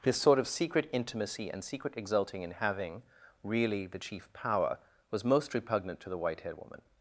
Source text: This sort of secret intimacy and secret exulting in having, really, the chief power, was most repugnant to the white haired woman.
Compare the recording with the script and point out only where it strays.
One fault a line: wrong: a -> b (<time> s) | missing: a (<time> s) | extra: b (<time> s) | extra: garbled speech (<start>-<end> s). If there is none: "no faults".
no faults